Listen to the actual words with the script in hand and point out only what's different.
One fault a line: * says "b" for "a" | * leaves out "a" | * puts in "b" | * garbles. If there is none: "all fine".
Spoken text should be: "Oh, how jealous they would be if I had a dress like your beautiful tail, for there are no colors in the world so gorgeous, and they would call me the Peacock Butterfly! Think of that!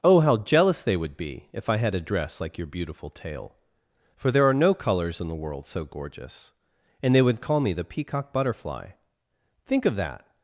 all fine